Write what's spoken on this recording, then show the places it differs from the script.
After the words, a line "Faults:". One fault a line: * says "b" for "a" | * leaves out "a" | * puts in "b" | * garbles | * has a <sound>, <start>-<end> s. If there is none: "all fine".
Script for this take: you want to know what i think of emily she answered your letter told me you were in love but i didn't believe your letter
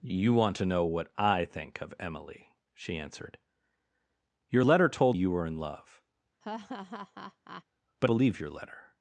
you want to know what i think of emily she answered your letter told you were in love but believe your letter
Faults:
* leaves out "me"
* has a laugh, 6.4-7.6 s
* leaves out "i didn't"